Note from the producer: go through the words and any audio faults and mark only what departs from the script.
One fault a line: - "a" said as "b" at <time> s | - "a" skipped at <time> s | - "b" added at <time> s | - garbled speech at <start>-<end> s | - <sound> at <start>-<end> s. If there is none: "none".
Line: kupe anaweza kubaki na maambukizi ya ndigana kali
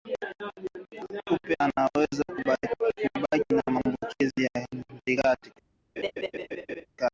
- laugh at 6.0-6.9 s